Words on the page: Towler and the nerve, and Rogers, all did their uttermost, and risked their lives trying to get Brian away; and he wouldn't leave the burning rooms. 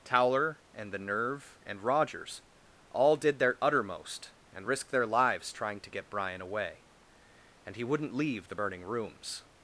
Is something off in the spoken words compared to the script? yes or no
no